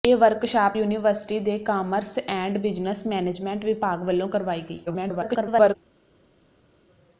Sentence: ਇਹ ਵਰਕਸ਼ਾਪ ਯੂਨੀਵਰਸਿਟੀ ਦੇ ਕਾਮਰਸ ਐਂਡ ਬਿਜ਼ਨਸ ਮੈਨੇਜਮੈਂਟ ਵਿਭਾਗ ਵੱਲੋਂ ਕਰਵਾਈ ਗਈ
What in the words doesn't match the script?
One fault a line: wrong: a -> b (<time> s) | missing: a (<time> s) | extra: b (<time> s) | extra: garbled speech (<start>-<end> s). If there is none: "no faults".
extra: garbled speech (4.9-5.8 s)